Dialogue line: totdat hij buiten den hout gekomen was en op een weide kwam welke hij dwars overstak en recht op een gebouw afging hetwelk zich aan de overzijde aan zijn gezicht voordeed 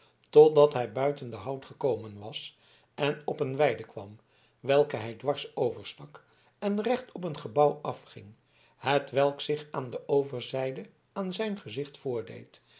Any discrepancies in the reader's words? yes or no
no